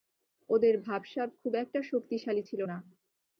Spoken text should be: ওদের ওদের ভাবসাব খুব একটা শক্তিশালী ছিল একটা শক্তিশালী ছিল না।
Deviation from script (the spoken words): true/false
true